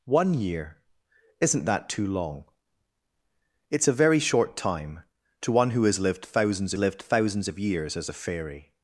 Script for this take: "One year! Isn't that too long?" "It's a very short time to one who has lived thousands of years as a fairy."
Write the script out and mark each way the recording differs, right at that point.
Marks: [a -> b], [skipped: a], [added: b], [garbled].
"One year! Isn't that too long?" "It's a very short time to one who has lived thousands [added: lived thousands] of years as a fairy."